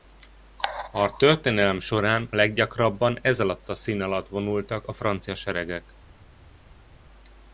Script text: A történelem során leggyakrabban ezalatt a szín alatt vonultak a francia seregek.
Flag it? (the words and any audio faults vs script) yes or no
no